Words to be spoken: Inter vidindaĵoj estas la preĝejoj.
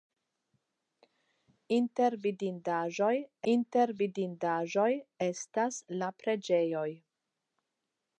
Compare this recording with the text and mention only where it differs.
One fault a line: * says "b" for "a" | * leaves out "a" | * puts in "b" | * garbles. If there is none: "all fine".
* puts in "inter vidindaĵoj"